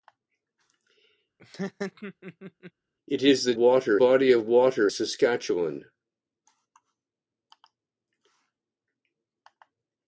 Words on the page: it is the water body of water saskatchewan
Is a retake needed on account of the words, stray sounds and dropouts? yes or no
yes